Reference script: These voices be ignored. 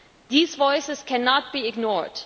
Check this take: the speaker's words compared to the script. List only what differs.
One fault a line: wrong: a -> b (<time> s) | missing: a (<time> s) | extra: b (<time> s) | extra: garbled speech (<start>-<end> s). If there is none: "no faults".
extra: cannot (1.0 s)